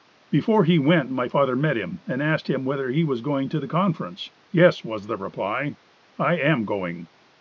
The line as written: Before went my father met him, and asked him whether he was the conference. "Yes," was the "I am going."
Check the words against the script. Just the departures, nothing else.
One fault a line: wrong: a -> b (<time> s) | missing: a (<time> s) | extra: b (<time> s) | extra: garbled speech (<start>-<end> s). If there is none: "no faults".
extra: he (0.6 s)
extra: going to (3.2 s)
extra: reply (5.2 s)